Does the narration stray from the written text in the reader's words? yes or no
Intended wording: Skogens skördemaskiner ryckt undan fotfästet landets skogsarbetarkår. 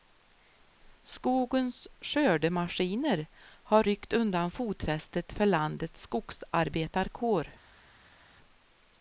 yes